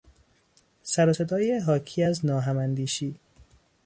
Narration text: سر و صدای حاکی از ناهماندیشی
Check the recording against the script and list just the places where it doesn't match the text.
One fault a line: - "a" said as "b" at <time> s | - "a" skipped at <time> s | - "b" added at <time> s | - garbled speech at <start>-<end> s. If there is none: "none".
none